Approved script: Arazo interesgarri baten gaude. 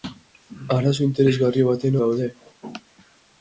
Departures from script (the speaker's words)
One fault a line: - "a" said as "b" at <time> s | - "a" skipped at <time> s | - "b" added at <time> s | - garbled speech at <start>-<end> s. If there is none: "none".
none